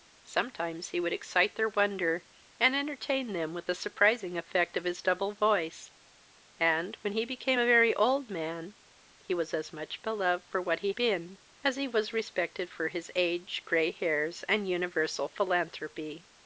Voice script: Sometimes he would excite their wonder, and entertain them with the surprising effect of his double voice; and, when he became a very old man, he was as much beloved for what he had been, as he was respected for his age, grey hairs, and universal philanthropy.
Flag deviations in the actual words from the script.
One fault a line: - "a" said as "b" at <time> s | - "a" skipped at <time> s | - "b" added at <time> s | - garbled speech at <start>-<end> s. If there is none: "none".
- "had" skipped at 10.9 s